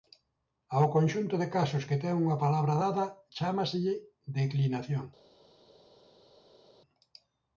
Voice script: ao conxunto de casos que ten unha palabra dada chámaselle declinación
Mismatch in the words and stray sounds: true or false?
false